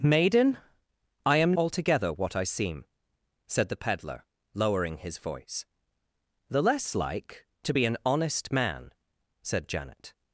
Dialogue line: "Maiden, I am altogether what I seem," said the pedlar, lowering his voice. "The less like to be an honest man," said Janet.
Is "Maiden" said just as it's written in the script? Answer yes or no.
yes